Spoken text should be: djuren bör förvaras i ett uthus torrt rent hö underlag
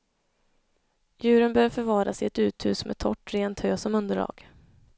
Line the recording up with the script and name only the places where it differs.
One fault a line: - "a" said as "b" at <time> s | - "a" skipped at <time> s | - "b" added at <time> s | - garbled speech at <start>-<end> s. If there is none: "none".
- "med" added at 2.9 s
- "som" added at 3.8 s